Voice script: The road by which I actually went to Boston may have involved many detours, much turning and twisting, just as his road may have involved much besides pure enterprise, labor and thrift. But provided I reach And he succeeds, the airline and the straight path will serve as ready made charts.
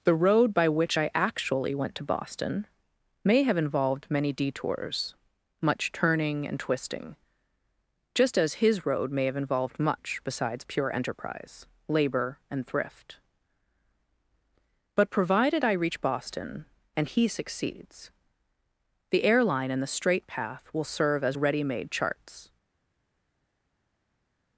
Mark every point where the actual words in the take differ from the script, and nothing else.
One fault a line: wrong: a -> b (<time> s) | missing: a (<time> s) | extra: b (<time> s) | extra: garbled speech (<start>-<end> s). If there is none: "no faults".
extra: Boston (16.0 s)